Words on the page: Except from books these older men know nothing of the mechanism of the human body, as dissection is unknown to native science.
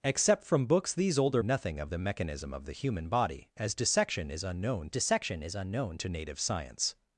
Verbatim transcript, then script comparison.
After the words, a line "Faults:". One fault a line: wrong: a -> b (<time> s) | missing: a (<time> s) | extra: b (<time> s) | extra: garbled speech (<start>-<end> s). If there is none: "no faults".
Except from books these older nothing of the mechanism of the human body, as dissection is unknown dissection is unknown to native science.
Faults:
missing: men know (1.4 s)
extra: dissection is unknown (4.9 s)